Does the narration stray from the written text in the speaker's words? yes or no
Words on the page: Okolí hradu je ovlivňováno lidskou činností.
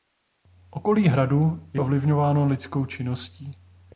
no